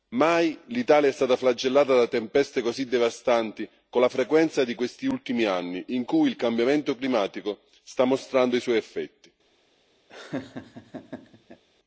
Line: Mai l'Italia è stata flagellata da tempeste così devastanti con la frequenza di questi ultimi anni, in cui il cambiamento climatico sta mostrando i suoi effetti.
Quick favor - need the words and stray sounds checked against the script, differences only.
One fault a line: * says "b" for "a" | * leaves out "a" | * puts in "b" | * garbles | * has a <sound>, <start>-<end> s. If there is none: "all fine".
* has a laugh, 10.1-11.6 s